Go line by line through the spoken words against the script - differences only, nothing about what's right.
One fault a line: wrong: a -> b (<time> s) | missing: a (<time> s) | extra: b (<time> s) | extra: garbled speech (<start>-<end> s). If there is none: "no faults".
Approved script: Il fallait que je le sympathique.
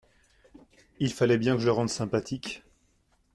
extra: bien (1.4 s)
extra: rende (1.7 s)